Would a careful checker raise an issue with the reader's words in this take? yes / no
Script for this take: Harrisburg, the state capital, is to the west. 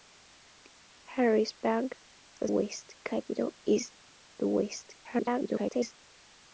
yes